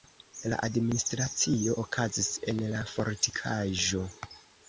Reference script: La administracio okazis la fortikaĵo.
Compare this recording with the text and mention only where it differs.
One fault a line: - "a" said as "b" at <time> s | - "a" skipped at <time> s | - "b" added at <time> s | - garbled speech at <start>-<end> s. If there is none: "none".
- "en" added at 2.5 s